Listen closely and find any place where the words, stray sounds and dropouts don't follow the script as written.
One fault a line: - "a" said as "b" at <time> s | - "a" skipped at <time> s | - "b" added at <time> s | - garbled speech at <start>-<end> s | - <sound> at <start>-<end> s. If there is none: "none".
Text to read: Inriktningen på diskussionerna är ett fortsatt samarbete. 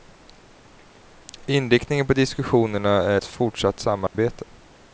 - dropout at 4.1-4.1 s